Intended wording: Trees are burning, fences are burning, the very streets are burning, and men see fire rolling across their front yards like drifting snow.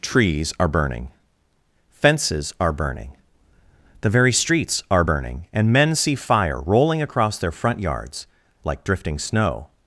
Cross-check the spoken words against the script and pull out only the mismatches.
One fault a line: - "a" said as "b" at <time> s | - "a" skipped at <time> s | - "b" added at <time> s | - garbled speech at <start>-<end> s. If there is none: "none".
none